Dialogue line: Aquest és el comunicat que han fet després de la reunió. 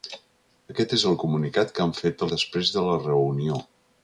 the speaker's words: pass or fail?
pass